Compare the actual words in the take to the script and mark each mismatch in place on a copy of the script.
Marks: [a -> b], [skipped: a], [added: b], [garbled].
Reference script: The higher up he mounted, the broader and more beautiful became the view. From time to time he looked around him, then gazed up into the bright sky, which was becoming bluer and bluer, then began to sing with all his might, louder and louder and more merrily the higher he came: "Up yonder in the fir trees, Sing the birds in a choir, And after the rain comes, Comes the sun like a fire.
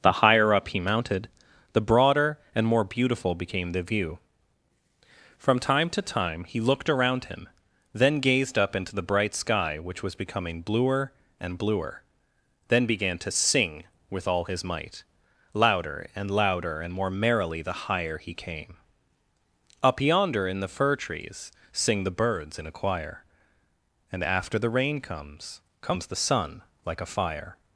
The higher up he mounted, the broader and more beautiful became the view. From time to time he looked around him, then gazed up into the bright sky, which was becoming bluer and bluer, then began to sing with all his might, louder and louder and more merrily the higher he came: "Up yonder in the fir trees, Sing the birds in a choir, And after the rain comes, Comes the sun like a fire.